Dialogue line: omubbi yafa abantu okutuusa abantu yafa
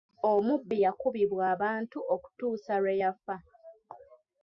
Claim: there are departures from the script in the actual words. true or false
true